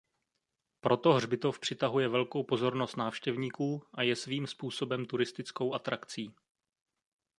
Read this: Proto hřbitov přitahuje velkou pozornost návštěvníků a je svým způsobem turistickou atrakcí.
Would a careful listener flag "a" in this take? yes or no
no